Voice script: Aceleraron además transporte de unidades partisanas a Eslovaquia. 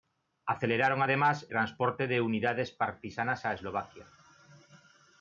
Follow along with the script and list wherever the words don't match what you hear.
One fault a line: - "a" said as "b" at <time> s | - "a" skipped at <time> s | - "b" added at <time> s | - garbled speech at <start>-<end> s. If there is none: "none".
none